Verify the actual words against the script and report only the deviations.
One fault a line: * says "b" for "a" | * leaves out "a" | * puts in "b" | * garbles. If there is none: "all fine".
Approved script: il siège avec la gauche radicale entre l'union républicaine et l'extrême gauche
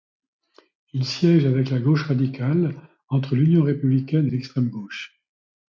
all fine